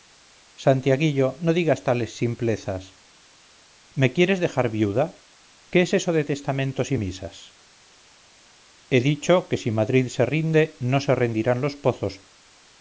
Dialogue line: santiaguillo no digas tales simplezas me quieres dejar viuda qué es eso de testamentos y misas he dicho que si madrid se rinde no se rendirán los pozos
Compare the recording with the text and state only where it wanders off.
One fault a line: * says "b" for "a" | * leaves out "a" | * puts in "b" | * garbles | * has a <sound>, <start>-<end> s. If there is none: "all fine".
all fine